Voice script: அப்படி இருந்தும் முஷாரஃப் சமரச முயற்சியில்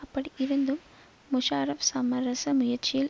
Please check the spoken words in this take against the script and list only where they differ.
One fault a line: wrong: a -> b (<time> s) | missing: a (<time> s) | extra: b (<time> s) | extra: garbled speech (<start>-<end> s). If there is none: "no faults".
no faults